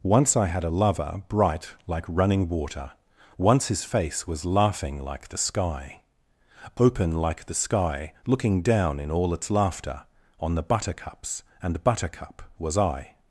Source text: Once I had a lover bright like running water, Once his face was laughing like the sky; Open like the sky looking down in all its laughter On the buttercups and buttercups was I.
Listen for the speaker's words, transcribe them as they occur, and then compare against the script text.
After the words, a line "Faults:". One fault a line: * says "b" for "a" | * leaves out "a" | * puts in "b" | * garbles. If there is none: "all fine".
Once I had a lover bright like running water, Once his face was laughing like the sky; Open like the sky looking down in all its laughter On the buttercups and buttercup was I.
Faults:
* says "buttercup" for "buttercups"